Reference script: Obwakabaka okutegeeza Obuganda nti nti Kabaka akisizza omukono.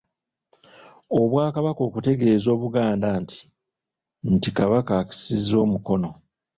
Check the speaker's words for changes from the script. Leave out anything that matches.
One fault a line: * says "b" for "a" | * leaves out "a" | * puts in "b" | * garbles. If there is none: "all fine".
all fine